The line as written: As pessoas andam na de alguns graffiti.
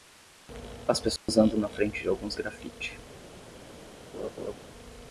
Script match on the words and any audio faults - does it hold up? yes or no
no